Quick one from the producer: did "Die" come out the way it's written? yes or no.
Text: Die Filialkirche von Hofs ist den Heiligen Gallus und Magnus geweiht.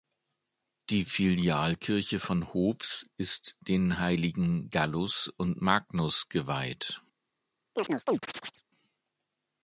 yes